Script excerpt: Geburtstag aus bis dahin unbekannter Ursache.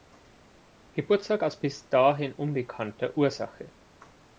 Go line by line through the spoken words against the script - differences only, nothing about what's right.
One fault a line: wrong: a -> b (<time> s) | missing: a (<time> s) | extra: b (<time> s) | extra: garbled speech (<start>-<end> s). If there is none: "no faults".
no faults